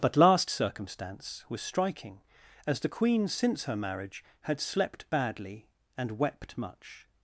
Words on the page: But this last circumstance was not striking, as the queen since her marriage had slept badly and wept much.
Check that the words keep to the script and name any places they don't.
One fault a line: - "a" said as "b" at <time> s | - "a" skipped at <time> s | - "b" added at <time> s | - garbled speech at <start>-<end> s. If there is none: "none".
- "this" skipped at 0.2 s
- "not" skipped at 1.6 s